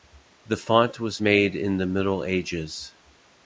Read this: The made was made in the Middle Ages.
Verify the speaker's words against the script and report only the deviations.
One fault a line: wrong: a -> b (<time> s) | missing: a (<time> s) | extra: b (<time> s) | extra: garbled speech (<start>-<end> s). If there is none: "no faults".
wrong: made -> font (0.6 s)